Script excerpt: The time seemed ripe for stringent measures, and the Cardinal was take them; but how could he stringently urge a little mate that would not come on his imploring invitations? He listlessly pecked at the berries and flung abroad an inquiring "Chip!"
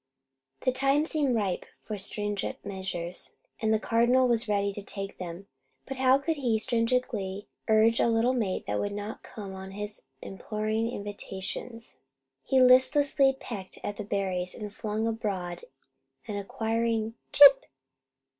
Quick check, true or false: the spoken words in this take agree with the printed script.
false